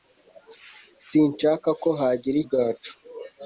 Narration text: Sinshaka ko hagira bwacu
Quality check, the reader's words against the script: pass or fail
pass